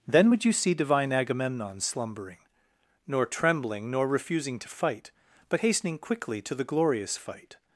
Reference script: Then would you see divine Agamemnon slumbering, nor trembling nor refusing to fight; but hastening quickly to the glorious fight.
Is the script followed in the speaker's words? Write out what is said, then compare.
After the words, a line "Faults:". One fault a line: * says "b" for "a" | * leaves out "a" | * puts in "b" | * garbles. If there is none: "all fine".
Then would you see divine Agamemnon slumbering, nor trembling nor refusing to fight; but hastening quickly to the glorious fight.
Faults:
all fine